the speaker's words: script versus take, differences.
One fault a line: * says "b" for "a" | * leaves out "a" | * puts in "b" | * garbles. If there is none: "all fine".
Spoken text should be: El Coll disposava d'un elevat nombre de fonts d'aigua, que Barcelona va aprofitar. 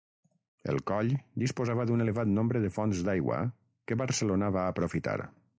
all fine